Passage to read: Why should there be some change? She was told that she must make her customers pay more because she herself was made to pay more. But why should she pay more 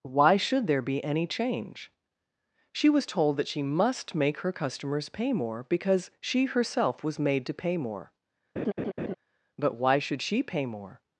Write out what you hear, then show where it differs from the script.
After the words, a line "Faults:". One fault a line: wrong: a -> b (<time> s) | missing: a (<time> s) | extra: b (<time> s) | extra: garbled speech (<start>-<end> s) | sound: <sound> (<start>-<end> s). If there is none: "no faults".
Why should there be any change? She was told that she must make her customers pay more because she herself was made to pay more. But why should she pay more
Faults:
wrong: some -> any (1.0 s)
sound: laugh (8.6-9.1 s)